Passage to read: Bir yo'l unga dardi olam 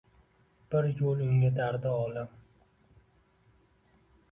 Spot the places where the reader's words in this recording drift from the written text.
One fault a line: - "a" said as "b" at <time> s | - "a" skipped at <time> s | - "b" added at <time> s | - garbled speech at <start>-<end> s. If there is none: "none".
none